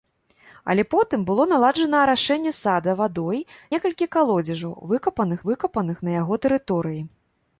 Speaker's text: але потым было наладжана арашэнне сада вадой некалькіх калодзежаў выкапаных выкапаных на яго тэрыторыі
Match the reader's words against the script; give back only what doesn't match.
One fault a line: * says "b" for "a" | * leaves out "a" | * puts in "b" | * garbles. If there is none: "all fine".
all fine